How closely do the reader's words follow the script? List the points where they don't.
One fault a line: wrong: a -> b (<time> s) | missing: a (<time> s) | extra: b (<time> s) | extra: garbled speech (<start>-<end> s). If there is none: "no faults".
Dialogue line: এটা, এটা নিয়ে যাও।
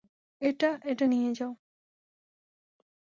no faults